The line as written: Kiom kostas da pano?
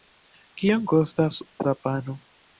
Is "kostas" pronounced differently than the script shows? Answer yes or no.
no